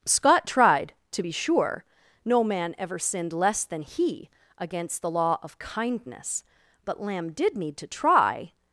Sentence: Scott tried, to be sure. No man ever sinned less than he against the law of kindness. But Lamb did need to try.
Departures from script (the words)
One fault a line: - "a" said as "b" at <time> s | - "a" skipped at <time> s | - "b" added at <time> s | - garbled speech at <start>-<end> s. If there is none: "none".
none